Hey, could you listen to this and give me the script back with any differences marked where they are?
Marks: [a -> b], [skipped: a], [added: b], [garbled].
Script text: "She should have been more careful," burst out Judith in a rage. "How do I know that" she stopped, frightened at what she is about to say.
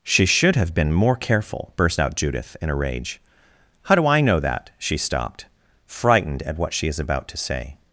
"She should have been more careful," burst out Judith in a rage. "How do I know that" she stopped, frightened at what she is about to say.